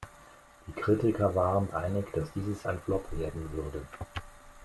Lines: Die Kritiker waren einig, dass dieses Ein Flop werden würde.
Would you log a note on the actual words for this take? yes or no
no